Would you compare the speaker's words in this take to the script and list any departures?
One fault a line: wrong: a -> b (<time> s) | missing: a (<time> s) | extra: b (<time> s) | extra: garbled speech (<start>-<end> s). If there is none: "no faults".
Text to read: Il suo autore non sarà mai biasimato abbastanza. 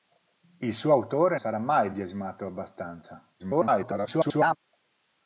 missing: non (1.4 s)
extra: garbled speech (3.4-4.6 s)